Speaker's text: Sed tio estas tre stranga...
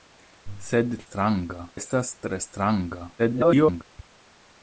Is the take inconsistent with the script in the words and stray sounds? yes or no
yes